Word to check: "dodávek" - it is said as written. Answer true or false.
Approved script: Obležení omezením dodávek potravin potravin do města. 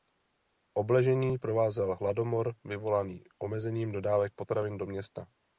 true